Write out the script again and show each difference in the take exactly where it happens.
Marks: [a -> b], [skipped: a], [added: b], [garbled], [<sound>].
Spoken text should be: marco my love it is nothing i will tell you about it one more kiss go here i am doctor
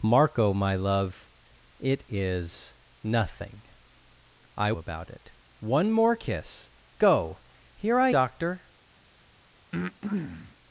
marco my love it is nothing i [skipped: will tell you] about it one more kiss go here i [skipped: am] doctor [breath]